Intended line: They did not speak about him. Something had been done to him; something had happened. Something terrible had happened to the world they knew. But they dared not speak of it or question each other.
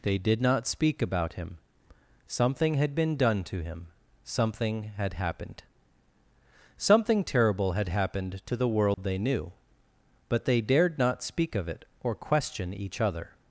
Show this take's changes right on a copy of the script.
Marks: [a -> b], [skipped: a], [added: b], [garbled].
They did not speak about him. Something had been done to him; something had happened. Something terrible had happened to the world they knew. But they dared not speak of it or question each other.